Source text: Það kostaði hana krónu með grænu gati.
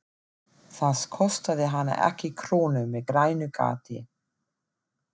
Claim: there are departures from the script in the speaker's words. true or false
true